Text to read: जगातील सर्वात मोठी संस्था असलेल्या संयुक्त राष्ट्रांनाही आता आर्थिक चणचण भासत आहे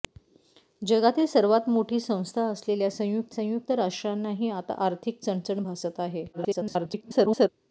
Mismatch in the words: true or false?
true